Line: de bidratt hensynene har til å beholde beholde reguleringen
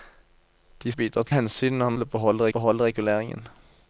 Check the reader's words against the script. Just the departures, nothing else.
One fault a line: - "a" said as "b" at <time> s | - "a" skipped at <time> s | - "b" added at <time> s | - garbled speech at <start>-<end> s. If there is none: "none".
none